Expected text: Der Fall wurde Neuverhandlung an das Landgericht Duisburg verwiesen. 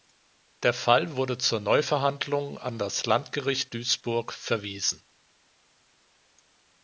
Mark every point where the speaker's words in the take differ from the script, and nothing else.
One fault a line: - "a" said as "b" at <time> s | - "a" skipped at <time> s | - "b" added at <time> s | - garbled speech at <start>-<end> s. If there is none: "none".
- "zur" added at 1.4 s